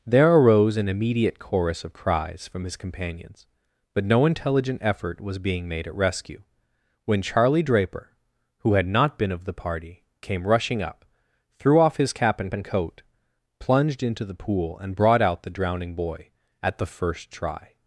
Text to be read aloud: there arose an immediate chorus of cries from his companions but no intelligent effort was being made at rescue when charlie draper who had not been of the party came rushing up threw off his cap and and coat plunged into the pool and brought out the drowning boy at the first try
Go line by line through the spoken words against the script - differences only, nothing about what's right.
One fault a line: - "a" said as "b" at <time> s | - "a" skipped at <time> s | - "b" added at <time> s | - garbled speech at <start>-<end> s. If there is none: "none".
none